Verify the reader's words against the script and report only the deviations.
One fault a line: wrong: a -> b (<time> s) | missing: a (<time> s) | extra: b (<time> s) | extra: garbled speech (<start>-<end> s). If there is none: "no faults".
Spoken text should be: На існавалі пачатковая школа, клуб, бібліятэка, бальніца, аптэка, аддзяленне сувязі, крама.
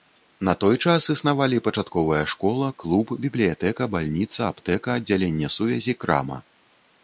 extra: той час (0.6 s)